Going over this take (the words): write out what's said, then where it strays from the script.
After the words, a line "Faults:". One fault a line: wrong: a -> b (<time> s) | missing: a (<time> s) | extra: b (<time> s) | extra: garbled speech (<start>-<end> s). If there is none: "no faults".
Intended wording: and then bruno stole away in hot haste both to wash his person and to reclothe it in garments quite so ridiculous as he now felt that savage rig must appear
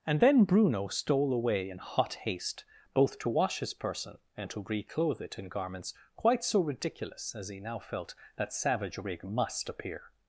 and then bruno stole away in hot haste both to wash his person and to reclothe it in garments quite so ridiculous as he now felt that savage rig must appear
Faults:
no faults